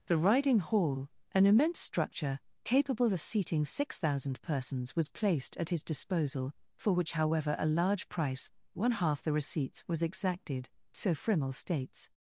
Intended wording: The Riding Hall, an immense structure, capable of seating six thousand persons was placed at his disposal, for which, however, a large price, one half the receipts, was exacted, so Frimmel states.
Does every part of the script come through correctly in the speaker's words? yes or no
yes